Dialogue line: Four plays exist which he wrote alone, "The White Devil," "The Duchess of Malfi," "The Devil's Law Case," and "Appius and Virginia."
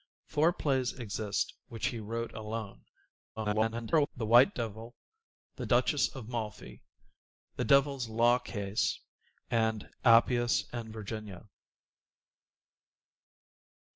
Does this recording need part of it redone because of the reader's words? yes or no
yes